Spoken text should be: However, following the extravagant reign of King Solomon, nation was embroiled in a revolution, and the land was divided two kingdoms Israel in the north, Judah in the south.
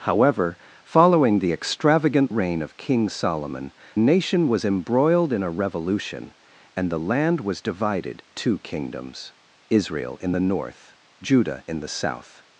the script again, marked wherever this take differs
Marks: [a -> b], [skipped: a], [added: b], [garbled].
However, following the extravagant reign of King Solomon, nation was embroiled in a revolution, and the land was divided two kingdoms Israel in the north, Judah in the south.